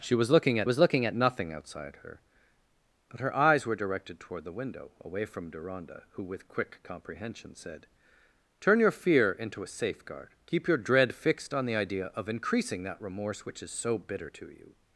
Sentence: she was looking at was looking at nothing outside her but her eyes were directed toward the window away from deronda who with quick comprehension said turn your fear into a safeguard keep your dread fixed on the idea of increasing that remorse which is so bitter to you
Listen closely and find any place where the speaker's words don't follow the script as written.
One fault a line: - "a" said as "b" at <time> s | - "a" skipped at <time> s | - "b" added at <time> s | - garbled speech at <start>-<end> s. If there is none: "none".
none